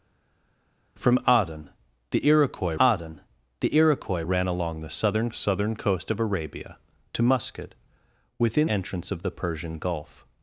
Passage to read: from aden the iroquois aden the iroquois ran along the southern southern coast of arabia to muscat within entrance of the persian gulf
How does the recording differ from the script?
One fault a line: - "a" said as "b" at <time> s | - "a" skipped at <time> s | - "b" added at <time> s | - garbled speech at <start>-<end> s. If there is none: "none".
none